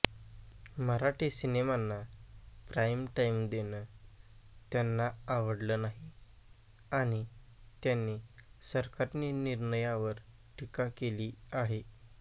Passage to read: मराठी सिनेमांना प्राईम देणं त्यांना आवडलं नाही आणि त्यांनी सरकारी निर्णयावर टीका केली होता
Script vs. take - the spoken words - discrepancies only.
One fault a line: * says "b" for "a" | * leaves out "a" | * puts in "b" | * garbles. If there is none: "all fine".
* puts in "टाईम"
* says "आहे" for "होता"